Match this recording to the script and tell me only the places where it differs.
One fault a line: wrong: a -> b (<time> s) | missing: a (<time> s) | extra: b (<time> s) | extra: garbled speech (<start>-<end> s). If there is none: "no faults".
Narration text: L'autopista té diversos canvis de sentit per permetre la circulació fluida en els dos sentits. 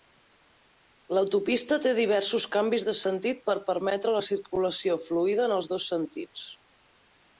no faults